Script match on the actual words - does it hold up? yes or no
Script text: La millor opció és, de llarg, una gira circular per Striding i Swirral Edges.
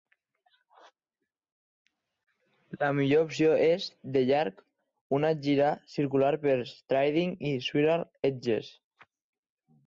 yes